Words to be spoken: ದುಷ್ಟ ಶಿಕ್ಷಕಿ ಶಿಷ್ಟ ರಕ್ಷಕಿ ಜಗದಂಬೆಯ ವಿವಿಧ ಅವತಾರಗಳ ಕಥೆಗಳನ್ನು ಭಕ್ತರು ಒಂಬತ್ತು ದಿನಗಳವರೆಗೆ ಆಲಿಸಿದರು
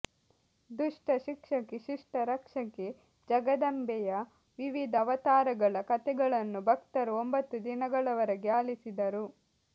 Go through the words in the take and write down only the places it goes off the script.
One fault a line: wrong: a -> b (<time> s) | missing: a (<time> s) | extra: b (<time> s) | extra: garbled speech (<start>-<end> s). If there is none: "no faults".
no faults